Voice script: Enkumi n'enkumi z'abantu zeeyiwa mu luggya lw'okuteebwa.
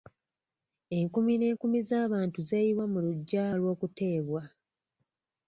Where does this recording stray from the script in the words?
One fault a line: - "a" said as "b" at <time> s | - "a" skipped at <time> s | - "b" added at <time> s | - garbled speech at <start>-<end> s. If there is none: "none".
none